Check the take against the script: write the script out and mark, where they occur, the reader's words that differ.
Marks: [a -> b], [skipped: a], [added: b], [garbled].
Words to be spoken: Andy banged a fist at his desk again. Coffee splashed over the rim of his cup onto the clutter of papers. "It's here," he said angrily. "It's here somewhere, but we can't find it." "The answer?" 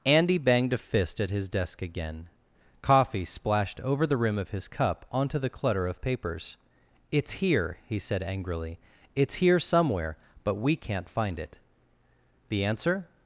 Andy banged a fist at his desk again. Coffee splashed over the rim of his cup onto the clutter of papers. "It's here," he said angrily. "It's here somewhere, but we can't find it." "The answer?"